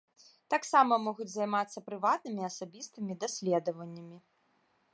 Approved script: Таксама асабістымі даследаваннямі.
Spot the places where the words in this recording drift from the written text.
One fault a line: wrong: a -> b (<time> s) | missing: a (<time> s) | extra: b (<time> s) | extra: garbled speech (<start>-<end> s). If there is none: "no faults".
extra: могуць займацца прыватнымі (1.1 s)